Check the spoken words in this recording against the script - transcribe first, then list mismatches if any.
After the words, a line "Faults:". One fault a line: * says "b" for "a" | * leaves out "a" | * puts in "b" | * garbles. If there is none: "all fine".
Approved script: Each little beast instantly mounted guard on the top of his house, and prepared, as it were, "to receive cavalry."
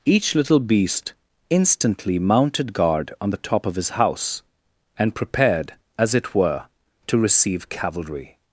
Each little beast instantly mounted guard on the top of his house, and prepared, as it were, "to receive cavalry."
Faults:
all fine